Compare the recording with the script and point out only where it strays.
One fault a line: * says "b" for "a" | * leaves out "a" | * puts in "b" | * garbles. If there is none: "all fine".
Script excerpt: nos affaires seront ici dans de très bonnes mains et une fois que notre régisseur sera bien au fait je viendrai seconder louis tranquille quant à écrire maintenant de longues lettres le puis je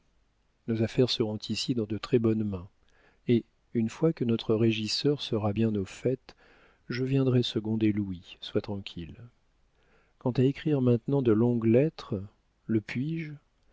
* puts in "sois"